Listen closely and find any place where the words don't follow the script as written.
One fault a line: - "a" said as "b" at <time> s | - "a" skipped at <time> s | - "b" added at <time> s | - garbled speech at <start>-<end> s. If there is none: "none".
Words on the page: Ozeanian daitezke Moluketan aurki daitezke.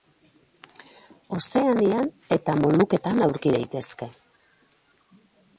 - "daitezke" said as "eta" at 2.4 s